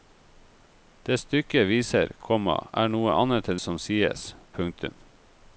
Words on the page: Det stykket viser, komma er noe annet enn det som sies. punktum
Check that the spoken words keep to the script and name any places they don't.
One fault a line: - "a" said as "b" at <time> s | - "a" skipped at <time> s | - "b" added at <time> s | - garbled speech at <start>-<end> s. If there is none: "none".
- "det" skipped at 3.6 s